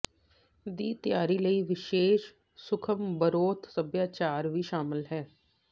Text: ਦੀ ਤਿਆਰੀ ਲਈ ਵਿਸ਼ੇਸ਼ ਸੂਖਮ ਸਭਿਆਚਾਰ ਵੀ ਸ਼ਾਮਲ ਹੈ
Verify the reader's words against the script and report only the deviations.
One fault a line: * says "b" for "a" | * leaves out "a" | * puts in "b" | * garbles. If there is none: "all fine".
* puts in "ਬਰੋਥ"